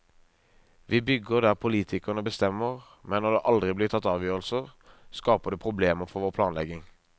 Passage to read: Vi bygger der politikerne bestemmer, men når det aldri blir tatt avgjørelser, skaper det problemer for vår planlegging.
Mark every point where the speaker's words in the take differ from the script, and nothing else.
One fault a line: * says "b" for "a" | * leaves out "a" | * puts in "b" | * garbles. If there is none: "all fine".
all fine